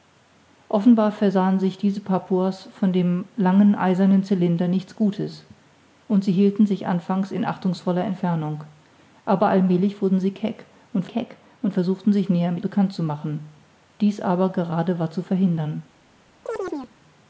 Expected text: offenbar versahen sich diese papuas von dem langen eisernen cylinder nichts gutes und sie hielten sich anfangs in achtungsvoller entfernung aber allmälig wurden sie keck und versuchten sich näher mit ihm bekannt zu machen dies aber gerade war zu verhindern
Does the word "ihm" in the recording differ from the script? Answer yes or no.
yes